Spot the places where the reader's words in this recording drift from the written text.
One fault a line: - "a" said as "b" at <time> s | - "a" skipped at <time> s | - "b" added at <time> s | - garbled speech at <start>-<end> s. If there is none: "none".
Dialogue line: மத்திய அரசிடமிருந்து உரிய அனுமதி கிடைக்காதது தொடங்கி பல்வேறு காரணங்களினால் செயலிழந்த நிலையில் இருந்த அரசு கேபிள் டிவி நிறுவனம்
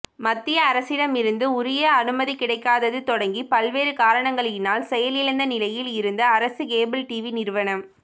none